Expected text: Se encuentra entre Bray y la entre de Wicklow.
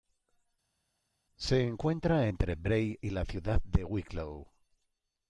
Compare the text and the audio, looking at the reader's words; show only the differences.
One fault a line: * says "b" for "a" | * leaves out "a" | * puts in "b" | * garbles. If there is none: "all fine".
* says "ciudad" for "entre"